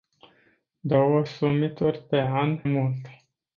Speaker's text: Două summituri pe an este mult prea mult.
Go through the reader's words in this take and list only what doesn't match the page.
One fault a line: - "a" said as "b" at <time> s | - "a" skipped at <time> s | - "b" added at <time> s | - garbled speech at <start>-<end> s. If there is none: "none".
- "este mult prea" skipped at 2.6 s